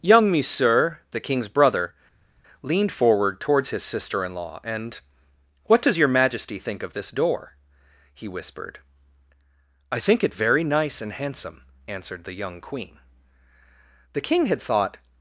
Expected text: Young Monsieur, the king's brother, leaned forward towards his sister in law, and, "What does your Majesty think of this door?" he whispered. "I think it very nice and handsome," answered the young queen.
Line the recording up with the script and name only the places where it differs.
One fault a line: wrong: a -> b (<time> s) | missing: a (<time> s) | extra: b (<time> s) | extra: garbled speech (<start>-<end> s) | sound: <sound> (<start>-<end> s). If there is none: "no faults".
extra: The king had thought (14.1 s)